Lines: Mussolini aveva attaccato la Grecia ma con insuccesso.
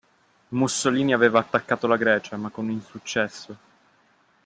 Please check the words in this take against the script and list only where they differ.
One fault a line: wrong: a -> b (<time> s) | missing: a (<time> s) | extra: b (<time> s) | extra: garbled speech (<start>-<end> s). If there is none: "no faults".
no faults